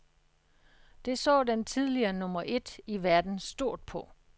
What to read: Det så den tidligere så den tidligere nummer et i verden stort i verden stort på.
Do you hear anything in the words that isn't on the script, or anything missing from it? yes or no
yes